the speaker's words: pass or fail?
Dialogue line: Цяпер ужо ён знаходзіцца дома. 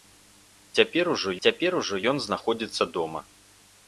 fail